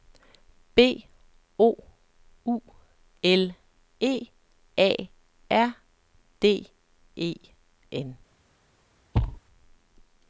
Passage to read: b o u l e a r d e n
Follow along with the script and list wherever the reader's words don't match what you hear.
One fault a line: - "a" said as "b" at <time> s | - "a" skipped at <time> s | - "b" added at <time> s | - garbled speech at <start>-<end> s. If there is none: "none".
none